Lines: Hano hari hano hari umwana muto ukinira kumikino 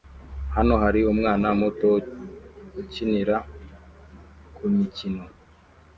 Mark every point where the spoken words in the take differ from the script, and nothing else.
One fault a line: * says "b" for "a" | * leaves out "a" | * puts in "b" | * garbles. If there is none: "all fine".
* leaves out "hano hari"